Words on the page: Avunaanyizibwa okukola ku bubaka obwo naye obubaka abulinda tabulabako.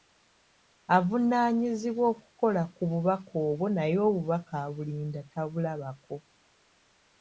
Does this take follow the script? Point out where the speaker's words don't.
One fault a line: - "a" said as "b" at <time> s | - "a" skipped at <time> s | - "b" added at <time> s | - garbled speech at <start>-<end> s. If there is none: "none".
none